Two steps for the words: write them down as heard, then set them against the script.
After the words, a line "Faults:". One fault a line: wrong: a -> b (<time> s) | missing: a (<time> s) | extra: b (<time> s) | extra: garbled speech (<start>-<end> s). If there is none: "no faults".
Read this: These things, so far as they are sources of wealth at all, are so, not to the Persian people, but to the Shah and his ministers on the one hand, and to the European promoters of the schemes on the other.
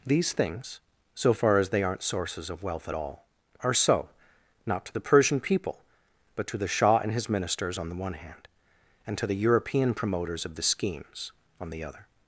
These things, so far as they aren't sources of wealth at all, are so, not to the Persian people, but to the Shah and his ministers on the one hand, and to the European promoters of the schemes on the other.
Faults:
wrong: are -> aren't (1.8 s)